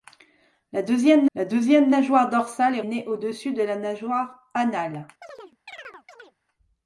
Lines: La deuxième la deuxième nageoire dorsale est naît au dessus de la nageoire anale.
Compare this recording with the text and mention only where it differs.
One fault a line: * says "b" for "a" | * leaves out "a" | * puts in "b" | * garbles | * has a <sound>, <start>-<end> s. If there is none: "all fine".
* has a chirp, 5.2-6.4 s